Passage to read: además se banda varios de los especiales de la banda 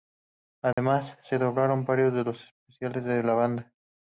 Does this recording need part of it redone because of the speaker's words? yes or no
yes